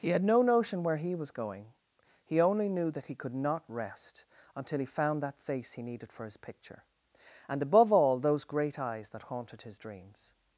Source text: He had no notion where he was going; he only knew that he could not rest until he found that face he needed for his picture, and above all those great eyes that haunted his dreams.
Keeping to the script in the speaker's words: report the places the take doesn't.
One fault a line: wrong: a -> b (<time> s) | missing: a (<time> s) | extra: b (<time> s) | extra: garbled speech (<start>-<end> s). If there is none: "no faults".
no faults